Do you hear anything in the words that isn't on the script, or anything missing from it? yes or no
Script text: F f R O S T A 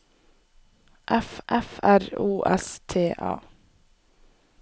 no